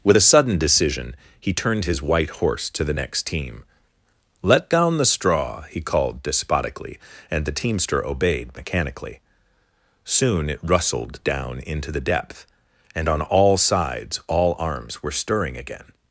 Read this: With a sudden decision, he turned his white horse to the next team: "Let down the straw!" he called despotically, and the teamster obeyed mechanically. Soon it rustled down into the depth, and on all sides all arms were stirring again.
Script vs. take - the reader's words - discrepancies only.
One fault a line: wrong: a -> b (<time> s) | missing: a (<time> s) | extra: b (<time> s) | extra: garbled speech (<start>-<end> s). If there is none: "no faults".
no faults